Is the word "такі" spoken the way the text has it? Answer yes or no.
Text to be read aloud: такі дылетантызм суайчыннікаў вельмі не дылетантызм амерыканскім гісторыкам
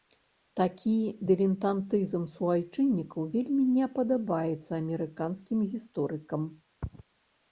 yes